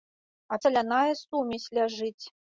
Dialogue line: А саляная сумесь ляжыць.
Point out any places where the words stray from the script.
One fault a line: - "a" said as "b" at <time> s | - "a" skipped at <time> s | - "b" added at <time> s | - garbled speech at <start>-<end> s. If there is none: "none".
none